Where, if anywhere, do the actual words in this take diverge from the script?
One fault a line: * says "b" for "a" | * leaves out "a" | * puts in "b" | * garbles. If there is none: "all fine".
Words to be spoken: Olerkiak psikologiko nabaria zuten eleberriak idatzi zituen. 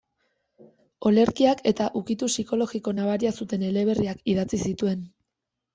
* puts in "eta ukitu"